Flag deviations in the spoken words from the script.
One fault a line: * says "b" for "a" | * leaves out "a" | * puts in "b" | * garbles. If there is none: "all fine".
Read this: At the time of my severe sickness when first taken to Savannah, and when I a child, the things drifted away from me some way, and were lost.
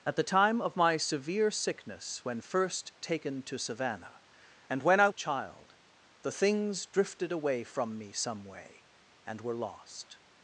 all fine